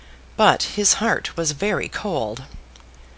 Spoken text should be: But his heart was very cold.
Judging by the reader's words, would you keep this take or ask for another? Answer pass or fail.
pass